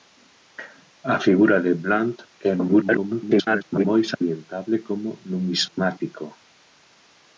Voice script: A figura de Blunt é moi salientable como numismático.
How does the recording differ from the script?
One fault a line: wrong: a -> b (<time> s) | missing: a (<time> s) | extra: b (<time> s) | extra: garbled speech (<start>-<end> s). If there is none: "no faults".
extra: garbled speech (2.7-3.9 s)